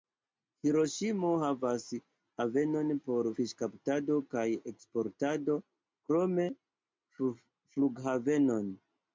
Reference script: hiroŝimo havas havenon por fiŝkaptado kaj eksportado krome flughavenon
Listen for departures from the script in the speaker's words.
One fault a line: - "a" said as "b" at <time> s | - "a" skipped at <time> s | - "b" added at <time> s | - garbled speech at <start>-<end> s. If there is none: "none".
none